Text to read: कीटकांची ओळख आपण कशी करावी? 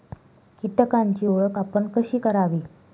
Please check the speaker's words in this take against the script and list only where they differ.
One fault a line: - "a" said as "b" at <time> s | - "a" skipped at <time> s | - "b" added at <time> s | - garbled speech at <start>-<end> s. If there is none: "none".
none